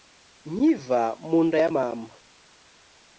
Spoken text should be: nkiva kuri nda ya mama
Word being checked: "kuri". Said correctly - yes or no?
no